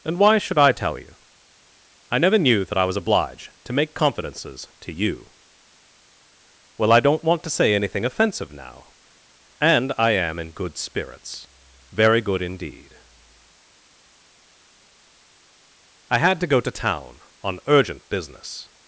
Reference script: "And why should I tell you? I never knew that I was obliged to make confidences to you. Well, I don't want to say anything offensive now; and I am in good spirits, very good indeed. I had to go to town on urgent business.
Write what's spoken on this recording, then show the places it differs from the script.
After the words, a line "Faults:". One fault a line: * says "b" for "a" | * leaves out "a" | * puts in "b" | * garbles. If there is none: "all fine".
"And why should I tell you? I never knew that I was obliged to make confidences to you. Well, I don't want to say anything offensive now; and I am in good spirits, very good indeed. I had to go to town on urgent business.
Faults:
all fine